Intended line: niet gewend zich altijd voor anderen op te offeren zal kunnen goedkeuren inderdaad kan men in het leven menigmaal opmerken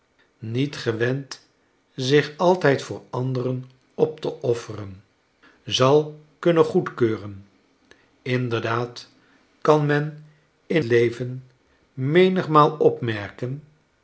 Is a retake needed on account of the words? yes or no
yes